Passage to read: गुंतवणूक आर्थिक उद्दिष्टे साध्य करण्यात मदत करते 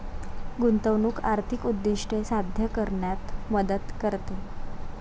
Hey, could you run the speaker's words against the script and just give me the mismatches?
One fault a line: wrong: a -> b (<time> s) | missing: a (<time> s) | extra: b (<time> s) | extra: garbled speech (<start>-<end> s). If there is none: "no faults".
no faults